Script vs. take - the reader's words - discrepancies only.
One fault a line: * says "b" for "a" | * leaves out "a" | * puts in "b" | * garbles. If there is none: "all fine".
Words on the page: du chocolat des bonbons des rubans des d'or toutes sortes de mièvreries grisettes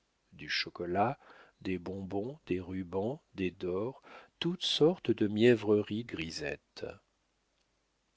all fine